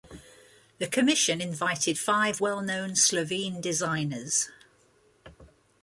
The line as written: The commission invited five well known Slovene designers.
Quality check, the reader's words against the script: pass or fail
pass